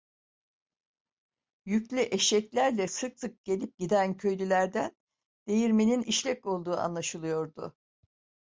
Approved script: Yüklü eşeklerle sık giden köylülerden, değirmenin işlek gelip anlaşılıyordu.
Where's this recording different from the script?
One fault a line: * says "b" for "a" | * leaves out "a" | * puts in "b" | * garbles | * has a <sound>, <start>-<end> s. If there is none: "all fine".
* puts in "sık gelip"
* says "olduğu" for "gelip"